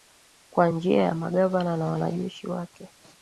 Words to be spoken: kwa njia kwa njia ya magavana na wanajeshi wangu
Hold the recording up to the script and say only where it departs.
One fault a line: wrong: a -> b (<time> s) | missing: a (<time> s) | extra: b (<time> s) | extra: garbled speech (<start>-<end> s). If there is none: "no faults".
missing: kwa njia (1.0 s)
wrong: wangu -> wake (2.5 s)